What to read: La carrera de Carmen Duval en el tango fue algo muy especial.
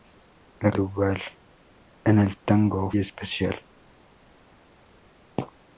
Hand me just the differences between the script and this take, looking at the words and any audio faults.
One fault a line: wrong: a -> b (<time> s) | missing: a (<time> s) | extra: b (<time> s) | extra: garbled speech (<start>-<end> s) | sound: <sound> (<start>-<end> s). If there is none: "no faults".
missing: carrera de Carmen (0.7 s)
missing: fue algo muy (2.9 s)